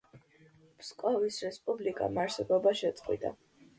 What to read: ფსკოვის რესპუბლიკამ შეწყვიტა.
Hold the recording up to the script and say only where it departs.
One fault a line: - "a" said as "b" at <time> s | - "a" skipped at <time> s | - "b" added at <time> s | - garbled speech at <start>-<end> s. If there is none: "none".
- "არსებობა" added at 2.2 s